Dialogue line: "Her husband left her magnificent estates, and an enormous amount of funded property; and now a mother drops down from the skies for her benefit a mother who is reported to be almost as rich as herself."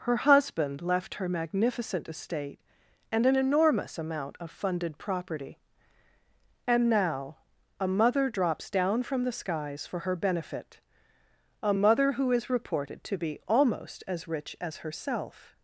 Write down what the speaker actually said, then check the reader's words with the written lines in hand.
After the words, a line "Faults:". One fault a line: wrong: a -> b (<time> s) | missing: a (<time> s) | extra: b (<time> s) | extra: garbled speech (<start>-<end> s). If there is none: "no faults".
"Her husband left her magnificent estate, and an enormous amount of funded property; and now a mother drops down from the skies for her benefit a mother who is reported to be almost as rich as herself."
Faults:
wrong: estates -> estate (2.1 s)